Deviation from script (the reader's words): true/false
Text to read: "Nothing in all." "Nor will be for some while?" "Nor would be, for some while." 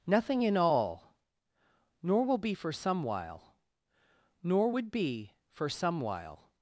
false